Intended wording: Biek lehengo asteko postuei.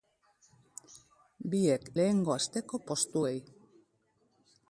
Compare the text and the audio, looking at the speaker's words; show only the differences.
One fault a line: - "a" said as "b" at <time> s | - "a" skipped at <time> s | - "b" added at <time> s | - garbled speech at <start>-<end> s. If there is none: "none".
none